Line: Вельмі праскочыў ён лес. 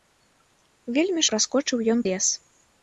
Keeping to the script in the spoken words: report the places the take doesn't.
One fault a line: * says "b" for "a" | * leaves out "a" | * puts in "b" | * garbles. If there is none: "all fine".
all fine